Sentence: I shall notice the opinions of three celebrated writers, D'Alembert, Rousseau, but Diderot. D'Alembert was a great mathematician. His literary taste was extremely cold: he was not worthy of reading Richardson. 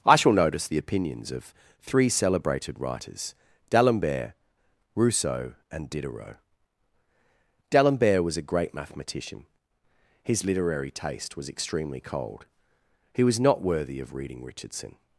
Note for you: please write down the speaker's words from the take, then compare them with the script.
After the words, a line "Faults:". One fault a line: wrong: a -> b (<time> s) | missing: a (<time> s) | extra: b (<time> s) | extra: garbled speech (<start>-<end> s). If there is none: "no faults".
I shall notice the opinions of three celebrated writers, D'Alembert, Rousseau, and Diderot. D'Alembert was a great mathematician. His literary taste was extremely cold: he was not worthy of reading Richardson.
Faults:
wrong: but -> and (5.7 s)